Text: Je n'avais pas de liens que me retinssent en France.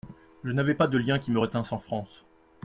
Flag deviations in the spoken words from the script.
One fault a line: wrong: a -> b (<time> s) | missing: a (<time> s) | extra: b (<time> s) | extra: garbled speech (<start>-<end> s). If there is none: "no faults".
wrong: que -> qui (1.2 s)